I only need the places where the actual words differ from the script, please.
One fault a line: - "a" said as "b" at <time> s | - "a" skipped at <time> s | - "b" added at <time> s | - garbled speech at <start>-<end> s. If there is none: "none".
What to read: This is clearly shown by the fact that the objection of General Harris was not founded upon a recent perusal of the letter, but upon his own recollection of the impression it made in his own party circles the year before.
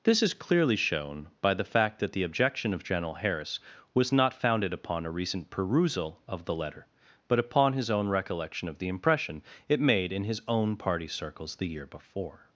none